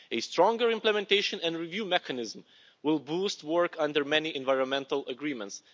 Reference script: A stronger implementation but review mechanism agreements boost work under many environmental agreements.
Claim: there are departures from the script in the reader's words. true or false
true